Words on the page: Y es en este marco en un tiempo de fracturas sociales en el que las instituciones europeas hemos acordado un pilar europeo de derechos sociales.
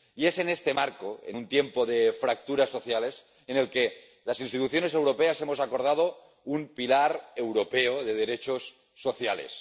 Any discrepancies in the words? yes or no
no